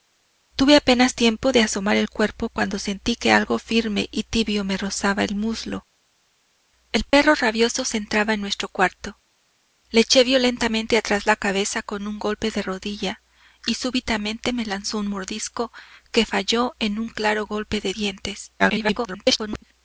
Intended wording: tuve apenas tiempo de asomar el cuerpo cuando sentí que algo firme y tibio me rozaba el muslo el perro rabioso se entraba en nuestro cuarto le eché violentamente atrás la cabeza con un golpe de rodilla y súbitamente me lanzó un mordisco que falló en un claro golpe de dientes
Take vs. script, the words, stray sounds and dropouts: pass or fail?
fail